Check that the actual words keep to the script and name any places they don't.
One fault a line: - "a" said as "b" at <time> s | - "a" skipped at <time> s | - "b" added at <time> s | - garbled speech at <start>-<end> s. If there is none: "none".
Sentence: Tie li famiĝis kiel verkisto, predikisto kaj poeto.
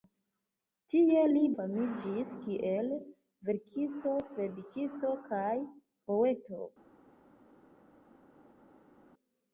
none